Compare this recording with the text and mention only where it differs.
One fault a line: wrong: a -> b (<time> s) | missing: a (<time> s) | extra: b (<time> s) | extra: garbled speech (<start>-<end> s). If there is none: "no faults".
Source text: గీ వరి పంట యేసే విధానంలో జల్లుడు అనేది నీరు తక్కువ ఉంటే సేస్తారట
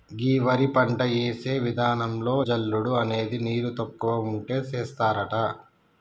no faults